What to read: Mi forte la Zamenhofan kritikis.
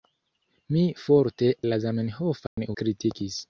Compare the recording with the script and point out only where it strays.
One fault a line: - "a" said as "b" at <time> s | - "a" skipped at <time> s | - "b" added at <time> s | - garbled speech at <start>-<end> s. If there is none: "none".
none